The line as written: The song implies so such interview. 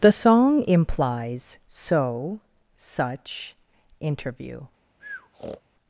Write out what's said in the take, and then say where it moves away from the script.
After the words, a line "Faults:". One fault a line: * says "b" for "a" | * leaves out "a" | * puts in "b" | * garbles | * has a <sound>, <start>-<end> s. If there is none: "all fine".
The song implies so such interview.
Faults:
* has a breath, 5.0-5.6 s